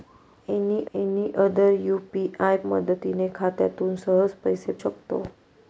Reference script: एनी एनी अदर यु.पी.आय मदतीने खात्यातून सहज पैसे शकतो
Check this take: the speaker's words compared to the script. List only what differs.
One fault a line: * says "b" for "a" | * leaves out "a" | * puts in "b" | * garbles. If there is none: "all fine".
all fine